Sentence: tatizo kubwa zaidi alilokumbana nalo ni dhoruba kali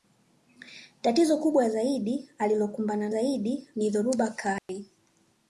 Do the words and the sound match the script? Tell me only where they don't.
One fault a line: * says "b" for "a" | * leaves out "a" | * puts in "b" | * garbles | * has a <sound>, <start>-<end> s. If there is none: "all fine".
* says "zaidi" for "nalo"
* has a dropout, 4.6-4.7 s